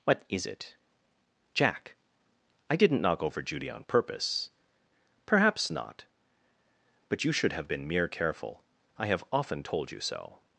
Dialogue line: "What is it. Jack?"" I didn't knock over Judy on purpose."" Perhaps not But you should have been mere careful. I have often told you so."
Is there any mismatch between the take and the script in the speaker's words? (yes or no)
no